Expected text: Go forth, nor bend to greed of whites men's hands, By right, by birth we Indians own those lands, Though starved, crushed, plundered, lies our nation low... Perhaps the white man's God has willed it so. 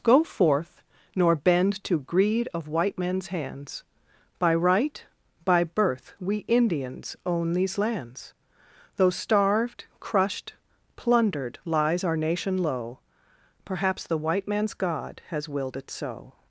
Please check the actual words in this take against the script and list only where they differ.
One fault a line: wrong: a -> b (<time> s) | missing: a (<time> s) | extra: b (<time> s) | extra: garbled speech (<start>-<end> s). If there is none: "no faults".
wrong: whites -> white (2.7 s)
wrong: those -> these (7.5 s)